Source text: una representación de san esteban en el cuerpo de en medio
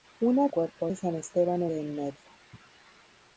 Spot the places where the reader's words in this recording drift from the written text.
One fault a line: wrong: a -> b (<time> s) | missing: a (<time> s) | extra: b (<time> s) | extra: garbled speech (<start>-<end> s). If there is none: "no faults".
wrong: representación -> cuerpo (0.5 s)
missing: el cuerpo (1.7 s)